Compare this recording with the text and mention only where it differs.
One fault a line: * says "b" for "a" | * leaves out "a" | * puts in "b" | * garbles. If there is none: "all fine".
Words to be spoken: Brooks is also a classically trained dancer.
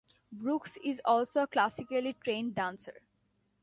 all fine